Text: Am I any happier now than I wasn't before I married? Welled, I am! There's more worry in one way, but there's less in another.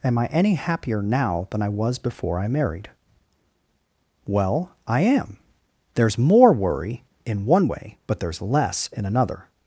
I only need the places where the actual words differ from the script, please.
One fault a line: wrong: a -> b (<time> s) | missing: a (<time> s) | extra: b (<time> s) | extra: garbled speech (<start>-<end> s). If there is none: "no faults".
wrong: wasn't -> was (1.7 s)
wrong: Welled -> Well (4.2 s)